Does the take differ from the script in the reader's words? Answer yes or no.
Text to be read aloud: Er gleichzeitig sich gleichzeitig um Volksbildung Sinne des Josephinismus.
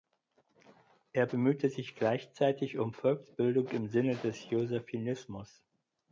yes